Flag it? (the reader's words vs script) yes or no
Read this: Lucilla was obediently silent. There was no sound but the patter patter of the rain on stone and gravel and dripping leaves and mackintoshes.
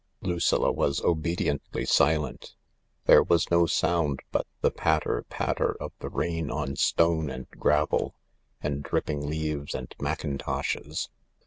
no